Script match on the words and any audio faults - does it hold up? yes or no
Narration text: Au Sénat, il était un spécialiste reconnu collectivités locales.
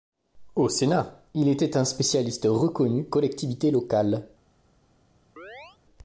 no